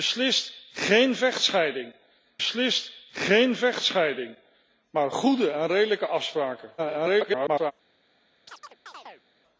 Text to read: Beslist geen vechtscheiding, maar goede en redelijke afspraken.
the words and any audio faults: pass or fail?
fail